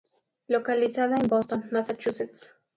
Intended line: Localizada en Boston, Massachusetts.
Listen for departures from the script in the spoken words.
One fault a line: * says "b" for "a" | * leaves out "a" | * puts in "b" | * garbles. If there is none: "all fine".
all fine